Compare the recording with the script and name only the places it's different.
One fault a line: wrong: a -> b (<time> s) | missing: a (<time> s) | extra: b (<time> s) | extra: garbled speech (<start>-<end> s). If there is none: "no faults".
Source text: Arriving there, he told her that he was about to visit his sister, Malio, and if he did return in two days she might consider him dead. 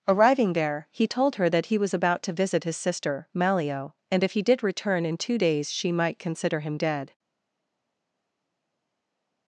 no faults